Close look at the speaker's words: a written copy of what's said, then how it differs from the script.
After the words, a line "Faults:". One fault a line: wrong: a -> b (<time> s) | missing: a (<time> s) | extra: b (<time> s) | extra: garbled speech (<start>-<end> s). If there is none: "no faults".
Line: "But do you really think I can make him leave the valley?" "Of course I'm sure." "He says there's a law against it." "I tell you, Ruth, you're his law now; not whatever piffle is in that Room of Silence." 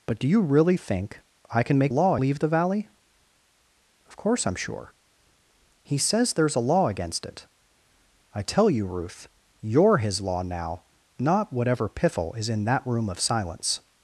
"But do you really think I can make law leave the valley?" "Of course I'm sure." "He says there's a law against it." "I tell you, Ruth, you're his law now; not whatever piffle is in that Room of Silence."
Faults:
wrong: him -> law (1.9 s)